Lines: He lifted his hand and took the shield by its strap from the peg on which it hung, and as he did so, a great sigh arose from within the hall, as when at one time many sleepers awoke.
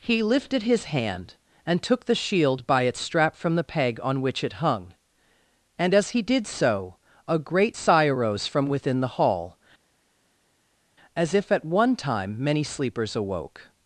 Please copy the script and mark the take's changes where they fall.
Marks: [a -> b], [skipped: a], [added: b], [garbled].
He lifted his hand and took the shield by its strap from the peg on which it hung, and as he did so, a great sigh arose from within the hall, as [when -> if] at one time many sleepers awoke.